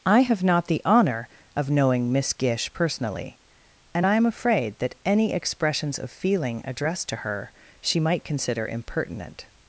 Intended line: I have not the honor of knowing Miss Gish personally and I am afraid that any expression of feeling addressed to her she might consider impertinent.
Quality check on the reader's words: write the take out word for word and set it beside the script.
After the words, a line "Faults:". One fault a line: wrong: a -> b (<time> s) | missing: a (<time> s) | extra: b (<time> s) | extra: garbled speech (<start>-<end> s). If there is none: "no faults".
I have not the honor of knowing Miss Gish personally and I am afraid that any expressions of feeling addressed to her she might consider impertinent.
Faults:
wrong: expression -> expressions (5.3 s)